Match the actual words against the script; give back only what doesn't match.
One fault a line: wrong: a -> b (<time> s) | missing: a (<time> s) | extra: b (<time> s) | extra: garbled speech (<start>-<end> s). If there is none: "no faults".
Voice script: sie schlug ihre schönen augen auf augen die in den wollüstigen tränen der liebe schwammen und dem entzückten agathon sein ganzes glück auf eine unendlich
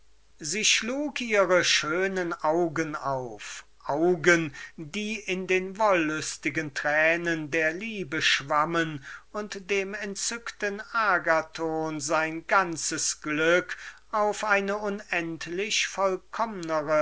no faults